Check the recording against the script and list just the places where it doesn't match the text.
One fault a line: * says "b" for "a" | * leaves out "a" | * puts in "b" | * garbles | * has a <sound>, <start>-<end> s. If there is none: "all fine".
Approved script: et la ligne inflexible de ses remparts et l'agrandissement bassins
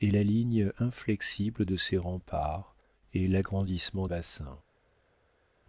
all fine